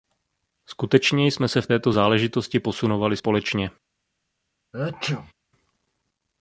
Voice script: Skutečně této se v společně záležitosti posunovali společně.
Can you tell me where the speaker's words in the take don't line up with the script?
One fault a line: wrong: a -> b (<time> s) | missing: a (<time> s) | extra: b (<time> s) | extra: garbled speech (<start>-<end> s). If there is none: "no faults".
wrong: této -> jsme (1.3 s)
wrong: společně -> této (1.6 s)